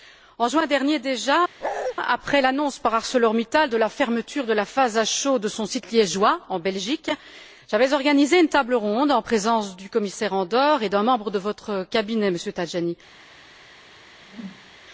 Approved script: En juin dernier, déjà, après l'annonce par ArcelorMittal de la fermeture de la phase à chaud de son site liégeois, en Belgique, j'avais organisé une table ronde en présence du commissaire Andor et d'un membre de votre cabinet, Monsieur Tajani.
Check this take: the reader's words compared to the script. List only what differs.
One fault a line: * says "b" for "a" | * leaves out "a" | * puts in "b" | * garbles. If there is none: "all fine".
all fine